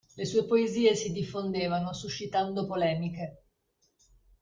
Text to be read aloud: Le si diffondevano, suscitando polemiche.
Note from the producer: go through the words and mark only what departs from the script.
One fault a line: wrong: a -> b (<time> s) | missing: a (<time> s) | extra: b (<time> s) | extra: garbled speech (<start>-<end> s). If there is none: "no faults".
extra: sue poesie (0.2 s)